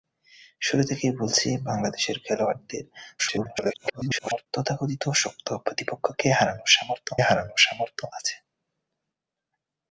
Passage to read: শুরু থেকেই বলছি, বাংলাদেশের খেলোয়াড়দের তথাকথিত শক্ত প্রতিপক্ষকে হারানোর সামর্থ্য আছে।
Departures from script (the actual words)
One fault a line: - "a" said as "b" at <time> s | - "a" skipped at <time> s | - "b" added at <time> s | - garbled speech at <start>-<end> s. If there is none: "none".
- garbled speech at 3.2-4.5 s
- "হারানোর সামর্থ্য" added at 7.2 s